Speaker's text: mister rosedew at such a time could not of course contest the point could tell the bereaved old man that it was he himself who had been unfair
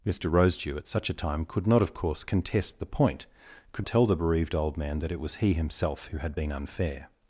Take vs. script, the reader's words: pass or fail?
pass